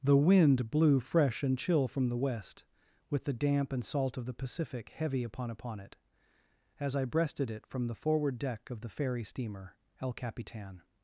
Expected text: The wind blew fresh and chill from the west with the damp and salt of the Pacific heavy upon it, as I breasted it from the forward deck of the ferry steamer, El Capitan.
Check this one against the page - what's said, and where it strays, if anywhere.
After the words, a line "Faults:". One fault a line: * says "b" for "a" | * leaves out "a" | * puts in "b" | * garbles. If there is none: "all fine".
The wind blew fresh and chill from the west with the damp and salt of the Pacific heavy upon upon it, as I breasted it from the forward deck of the ferry steamer, El Capitan.
Faults:
* puts in "upon"